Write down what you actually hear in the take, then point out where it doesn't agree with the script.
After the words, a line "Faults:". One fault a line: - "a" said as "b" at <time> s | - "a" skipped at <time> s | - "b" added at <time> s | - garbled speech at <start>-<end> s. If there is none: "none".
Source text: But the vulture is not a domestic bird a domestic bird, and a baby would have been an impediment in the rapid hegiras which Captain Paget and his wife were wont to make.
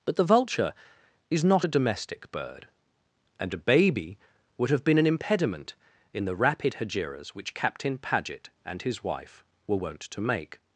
But the vulture is not a domestic bird, and a baby would have been an impediment in the rapid hegiras which Captain Paget and his wife were wont to make.
Faults:
- "a domestic bird" skipped at 2.7 s